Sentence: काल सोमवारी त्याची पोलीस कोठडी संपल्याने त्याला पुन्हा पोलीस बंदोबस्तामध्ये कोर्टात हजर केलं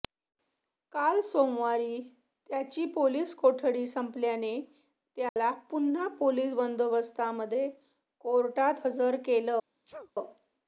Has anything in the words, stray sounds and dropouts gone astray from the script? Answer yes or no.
yes